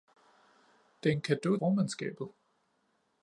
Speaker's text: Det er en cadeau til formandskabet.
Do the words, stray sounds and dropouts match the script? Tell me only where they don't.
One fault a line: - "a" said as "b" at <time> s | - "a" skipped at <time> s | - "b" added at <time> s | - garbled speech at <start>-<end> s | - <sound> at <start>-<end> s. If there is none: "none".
- "til" skipped at 1.6 s